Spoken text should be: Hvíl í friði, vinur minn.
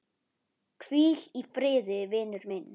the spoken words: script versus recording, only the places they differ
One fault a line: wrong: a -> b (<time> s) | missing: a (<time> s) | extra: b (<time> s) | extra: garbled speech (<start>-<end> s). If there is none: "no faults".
no faults